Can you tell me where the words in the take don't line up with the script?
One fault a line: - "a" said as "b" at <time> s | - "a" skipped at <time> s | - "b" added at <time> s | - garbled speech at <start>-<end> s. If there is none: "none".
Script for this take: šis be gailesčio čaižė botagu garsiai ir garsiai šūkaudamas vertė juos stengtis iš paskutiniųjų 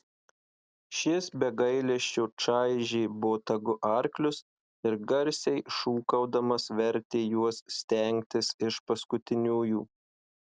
- "garsiai" said as "arklius" at 3.9 s